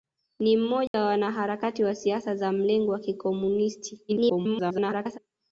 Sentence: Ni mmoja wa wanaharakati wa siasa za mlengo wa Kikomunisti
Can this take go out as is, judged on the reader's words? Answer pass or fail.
fail